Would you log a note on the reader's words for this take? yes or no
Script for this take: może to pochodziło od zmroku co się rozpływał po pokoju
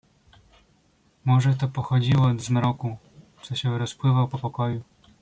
no